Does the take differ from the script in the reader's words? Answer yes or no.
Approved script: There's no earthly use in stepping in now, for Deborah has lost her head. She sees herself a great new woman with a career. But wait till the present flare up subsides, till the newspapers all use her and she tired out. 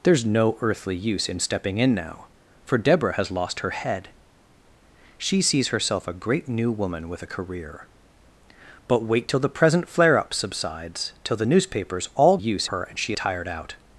no